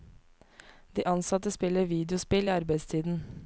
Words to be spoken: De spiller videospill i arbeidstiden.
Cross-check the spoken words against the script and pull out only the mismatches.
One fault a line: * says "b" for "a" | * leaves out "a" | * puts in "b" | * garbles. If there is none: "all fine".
* puts in "ansatte"